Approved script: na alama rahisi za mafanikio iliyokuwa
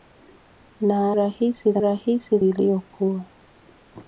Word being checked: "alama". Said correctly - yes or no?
no